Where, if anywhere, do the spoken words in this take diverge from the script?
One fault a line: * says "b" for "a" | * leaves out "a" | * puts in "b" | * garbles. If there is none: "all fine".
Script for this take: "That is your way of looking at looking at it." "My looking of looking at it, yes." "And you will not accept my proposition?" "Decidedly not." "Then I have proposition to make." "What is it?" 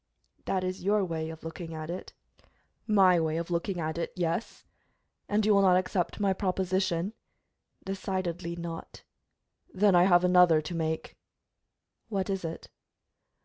* leaves out "looking at"
* says "way" for "looking"
* says "another" for "proposition"